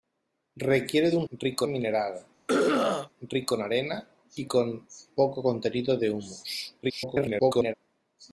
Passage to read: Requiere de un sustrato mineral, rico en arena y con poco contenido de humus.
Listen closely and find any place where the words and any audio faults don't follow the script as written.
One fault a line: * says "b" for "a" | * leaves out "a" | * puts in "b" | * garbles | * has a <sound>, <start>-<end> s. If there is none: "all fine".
* says "rico" for "sustrato"
* has a throat clearing, 2.5-3.1 s
* garbles